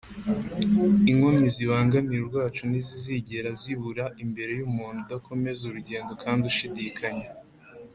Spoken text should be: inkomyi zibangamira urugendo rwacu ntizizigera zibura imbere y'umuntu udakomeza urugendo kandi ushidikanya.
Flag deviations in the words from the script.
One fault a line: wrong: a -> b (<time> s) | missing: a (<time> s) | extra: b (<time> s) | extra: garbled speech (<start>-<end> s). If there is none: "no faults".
missing: urugendo (2.2 s)